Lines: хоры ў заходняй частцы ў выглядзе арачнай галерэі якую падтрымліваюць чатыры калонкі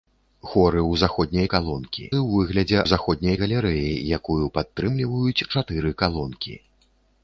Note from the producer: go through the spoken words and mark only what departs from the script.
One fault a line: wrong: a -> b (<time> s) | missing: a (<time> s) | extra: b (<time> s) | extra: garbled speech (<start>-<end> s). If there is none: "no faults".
wrong: частцы -> калонкі (1.5 s)
wrong: арачнай -> заходняй (2.9 s)